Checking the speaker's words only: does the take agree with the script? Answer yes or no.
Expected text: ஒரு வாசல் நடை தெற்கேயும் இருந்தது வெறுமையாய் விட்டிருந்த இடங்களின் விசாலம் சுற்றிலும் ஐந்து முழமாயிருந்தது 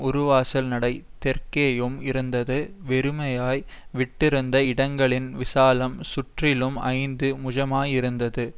yes